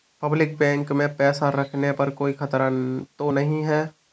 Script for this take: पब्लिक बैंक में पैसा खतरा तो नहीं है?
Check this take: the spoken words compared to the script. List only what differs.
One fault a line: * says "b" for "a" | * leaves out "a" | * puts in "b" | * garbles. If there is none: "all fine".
* puts in "रखने पर कोई"